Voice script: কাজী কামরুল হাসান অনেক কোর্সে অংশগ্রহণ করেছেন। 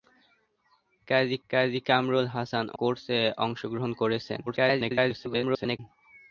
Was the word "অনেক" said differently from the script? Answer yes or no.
yes